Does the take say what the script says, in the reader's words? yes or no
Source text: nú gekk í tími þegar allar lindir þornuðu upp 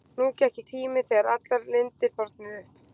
yes